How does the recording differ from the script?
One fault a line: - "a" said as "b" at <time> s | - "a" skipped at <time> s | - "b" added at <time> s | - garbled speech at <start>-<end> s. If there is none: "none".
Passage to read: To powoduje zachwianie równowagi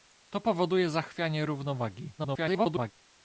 - garbled speech at 2.2-2.9 s